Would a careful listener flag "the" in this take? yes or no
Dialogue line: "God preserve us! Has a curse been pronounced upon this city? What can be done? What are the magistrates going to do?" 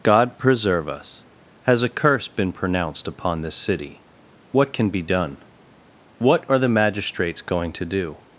no